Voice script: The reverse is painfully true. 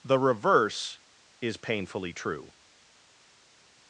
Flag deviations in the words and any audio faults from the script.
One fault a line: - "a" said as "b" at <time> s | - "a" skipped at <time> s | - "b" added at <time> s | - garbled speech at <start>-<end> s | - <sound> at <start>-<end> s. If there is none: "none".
none